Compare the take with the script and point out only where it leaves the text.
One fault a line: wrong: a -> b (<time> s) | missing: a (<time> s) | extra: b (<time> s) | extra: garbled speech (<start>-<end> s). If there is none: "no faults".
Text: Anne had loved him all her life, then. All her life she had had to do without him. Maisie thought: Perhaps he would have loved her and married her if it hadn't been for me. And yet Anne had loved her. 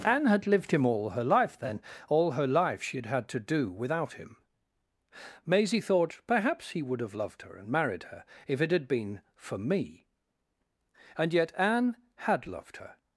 wrong: loved -> lived (0.5 s)
wrong: hadn't -> had (8.7 s)